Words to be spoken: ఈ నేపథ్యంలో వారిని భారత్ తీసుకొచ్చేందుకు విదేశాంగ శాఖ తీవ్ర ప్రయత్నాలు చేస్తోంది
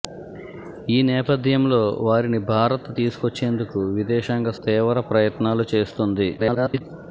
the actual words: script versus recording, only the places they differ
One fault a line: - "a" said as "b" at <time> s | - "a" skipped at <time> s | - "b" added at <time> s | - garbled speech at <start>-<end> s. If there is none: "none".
- "శాఖ" skipped at 4.5 s
- garbled speech at 6.4-6.8 s